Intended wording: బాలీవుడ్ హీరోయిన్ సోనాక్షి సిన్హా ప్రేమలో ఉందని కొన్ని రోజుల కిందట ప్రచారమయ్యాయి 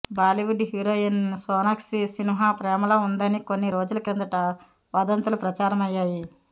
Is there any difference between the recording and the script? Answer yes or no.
yes